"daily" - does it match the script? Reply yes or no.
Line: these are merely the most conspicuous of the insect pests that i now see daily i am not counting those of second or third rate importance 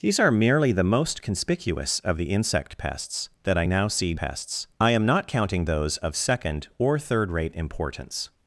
no